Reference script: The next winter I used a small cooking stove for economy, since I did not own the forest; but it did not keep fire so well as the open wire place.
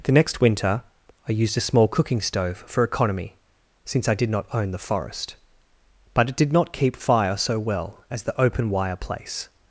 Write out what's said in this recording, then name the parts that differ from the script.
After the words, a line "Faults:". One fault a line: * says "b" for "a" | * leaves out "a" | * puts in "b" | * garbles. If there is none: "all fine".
The next winter I used a small cooking stove for economy, since I did not own the forest; but it did not keep fire so well as the open wire place.
Faults:
all fine